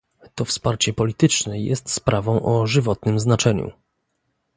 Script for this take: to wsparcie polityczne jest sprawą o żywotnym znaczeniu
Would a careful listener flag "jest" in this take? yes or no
no